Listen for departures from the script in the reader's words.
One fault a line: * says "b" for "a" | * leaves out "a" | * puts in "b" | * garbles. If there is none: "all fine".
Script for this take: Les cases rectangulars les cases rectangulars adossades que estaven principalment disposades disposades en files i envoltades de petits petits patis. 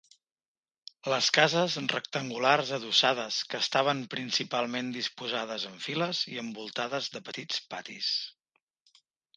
* leaves out "les cases rectangulars"
* leaves out "disposades"
* leaves out "petits"